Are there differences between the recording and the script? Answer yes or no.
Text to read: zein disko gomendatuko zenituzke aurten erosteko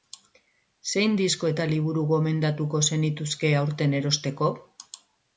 yes